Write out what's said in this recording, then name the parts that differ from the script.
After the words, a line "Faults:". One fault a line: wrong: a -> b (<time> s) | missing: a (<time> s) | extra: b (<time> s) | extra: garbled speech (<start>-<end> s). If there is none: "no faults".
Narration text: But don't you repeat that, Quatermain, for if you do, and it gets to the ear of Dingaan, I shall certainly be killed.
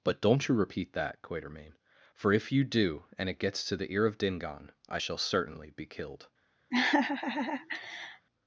But don't you repeat that, Quatermain, for if you do, and it gets to the ear of Dingaan, I shall certainly be killed.
Faults:
no faults